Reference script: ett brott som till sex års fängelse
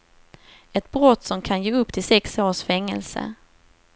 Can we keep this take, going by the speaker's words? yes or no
no